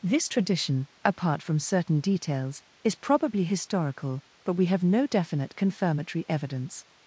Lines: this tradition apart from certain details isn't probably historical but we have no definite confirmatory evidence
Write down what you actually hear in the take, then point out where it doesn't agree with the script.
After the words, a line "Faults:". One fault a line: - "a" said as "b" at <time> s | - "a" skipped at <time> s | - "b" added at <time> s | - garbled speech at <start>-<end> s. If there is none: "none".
this tradition apart from certain details is probably historical but we have no definite confirmatory evidence
Faults:
- "isn't" said as "is" at 2.9 s